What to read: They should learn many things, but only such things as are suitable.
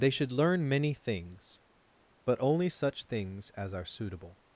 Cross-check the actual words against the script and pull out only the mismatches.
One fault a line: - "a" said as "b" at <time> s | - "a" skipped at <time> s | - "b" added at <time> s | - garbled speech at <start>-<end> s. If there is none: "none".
none